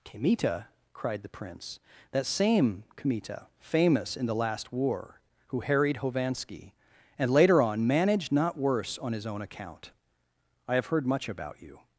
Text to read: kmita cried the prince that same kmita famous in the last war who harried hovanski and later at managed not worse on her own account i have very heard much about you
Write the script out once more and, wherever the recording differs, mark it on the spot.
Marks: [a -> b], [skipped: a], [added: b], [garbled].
kmita cried the prince that same kmita famous in the last war who harried hovanski and later [at -> on] managed not worse on [her -> his] own account i have [skipped: very] heard much about you